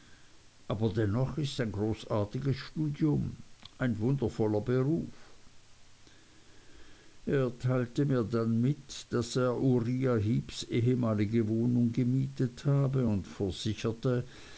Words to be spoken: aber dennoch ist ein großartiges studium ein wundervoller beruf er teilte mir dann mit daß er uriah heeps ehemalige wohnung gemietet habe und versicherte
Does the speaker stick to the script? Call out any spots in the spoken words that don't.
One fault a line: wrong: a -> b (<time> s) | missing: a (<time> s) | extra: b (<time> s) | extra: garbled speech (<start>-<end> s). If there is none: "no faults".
no faults